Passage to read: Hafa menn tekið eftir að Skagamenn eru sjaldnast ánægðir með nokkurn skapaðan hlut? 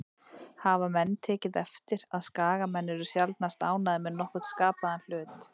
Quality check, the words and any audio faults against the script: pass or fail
pass